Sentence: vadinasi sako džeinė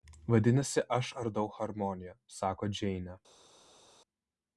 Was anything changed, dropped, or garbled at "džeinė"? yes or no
no